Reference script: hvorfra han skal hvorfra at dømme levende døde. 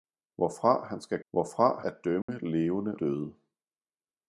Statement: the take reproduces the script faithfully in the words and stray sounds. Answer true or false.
false